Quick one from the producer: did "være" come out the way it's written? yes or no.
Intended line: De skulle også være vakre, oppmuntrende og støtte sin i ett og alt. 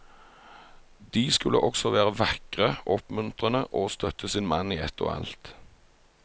yes